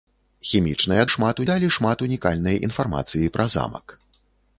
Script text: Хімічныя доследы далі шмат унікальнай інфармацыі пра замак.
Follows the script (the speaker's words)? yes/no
no